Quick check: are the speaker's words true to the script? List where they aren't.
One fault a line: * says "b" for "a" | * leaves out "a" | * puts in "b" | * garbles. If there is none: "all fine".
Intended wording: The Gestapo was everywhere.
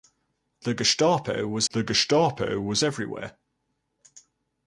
* puts in "the Gestapo was"